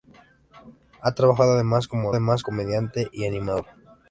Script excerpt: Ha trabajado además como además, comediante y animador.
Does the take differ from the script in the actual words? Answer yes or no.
no